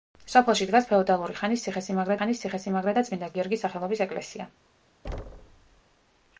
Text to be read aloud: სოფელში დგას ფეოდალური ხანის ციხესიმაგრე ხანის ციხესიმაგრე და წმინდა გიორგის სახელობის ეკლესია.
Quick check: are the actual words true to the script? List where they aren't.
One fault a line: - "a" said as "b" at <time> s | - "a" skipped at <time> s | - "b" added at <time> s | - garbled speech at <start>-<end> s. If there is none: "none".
none